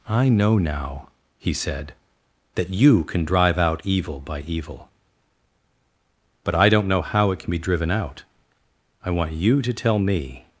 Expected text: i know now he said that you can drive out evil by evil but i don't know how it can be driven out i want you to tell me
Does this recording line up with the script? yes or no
yes